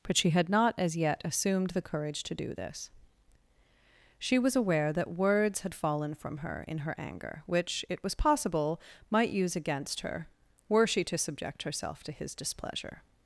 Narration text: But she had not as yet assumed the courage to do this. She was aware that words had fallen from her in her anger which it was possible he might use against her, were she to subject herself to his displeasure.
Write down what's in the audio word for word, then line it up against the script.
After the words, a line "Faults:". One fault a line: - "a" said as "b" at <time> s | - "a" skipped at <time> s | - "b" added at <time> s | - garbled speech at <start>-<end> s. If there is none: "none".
But she had not as yet assumed the courage to do this. She was aware that words had fallen from her in her anger which it was possible might use against her, were she to subject herself to his displeasure.
Faults:
- "he" skipped at 8.8 s